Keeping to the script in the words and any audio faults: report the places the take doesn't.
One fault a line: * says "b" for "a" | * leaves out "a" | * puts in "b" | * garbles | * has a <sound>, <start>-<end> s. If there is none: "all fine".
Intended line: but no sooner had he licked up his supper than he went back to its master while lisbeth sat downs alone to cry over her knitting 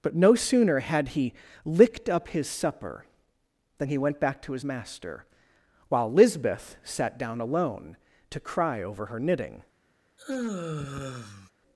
* says "his" for "its"
* says "down" for "downs"
* has a sigh, 10.2-11.5 s